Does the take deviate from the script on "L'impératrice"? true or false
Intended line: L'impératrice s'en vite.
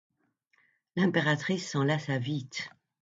false